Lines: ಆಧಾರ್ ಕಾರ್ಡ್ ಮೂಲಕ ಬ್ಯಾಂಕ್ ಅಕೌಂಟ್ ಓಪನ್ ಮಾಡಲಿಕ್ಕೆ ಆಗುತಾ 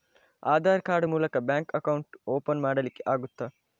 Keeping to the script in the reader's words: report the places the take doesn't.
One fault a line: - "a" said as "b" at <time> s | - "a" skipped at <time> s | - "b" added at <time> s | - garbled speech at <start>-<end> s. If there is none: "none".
none